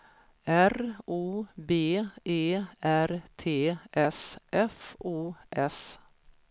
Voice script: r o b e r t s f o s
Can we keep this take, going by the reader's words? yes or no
yes